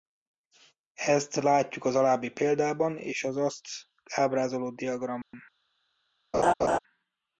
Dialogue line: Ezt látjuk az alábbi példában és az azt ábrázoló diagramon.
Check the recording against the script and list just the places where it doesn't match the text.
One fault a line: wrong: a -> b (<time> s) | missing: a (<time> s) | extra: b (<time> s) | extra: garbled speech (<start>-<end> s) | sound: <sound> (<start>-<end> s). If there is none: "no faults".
sound: dropout (5.2-5.3 s)
sound: laugh (6.3-6.8 s)